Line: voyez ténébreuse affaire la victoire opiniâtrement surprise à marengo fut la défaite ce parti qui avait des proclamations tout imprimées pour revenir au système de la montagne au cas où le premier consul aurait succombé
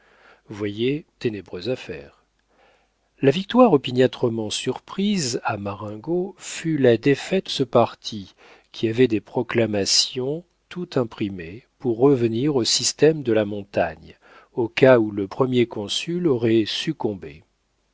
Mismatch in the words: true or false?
false